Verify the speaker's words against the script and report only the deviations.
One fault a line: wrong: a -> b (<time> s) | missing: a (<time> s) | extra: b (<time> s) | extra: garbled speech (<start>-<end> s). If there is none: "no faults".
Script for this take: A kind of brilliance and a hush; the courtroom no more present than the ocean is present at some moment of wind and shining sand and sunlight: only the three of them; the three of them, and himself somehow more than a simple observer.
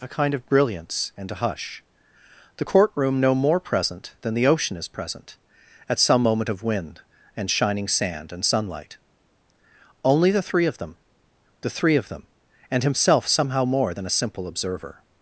no faults